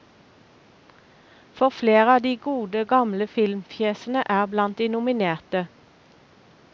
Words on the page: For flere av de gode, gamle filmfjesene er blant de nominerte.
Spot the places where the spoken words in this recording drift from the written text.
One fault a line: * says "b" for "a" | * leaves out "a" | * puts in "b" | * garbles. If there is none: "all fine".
all fine